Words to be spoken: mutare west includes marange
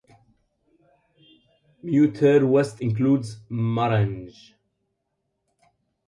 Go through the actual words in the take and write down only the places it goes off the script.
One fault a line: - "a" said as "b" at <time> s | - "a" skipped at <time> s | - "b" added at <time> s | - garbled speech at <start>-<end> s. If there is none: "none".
none